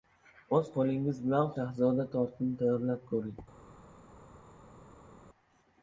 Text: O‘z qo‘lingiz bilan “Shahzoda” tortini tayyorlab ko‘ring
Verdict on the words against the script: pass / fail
pass